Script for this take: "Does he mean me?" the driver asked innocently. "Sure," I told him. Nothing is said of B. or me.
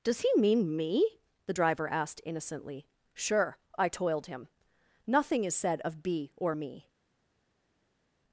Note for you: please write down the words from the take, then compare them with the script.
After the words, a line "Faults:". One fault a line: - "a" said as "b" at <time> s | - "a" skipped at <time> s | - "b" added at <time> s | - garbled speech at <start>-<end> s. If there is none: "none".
"Does he mean me?" the driver asked innocently. "Sure," I toiled him. Nothing is said of B. or me.
Faults:
- "told" said as "toiled" at 3.9 s